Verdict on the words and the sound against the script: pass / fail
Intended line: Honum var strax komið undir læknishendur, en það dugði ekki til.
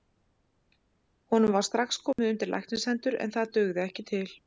fail